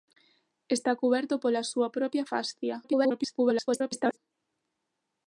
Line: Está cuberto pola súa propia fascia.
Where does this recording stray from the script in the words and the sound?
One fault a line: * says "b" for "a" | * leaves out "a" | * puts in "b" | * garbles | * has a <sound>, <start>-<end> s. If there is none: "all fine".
* garbles